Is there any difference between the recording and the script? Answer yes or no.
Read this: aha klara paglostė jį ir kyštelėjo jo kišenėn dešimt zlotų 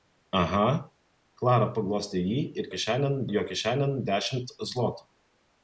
yes